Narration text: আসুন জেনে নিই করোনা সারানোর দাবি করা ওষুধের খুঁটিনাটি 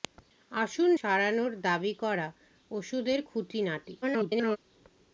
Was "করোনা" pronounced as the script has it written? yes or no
no